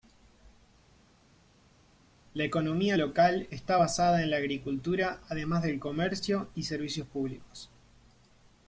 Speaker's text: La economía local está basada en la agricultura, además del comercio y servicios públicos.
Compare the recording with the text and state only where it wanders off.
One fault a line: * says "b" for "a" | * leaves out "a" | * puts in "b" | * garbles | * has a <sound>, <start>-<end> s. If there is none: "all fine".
all fine